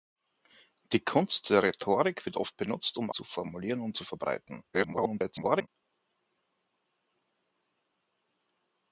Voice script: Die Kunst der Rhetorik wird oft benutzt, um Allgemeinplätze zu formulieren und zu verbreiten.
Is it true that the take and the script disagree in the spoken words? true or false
true